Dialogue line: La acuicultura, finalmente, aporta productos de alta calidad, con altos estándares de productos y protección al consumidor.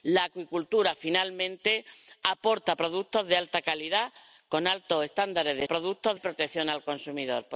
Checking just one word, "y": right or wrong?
right